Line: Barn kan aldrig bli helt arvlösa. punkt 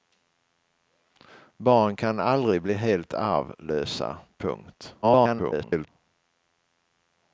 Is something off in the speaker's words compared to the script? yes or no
yes